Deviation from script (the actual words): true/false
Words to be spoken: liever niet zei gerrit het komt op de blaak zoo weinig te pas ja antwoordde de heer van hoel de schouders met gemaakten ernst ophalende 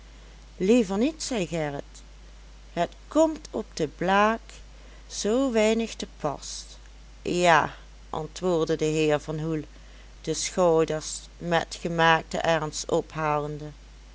false